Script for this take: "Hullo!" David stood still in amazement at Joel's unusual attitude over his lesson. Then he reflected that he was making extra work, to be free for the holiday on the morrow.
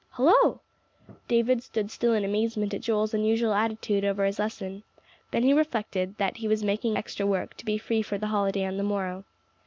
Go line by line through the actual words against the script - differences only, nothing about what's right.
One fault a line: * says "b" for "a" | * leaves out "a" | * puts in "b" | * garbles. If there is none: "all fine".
all fine